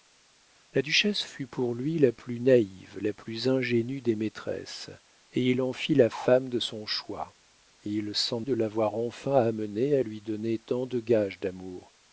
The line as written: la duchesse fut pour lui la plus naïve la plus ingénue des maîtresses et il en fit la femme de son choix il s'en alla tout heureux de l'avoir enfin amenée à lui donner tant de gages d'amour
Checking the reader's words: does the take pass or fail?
fail